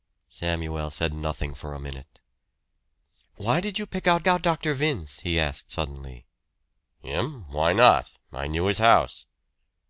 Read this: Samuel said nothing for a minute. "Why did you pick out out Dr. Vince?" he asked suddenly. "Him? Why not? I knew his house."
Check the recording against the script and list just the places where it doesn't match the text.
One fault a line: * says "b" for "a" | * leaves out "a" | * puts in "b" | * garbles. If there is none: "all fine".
all fine